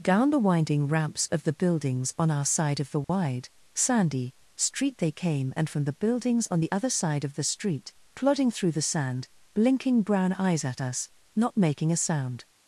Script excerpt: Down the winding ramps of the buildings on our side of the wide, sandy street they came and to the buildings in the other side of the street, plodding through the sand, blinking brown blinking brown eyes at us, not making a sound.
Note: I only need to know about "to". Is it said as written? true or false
false